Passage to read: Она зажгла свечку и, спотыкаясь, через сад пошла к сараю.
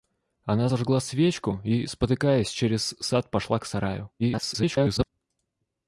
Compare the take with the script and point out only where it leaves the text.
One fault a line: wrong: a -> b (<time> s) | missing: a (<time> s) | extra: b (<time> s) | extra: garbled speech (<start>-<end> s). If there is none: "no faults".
extra: garbled speech (4.2-5.1 s)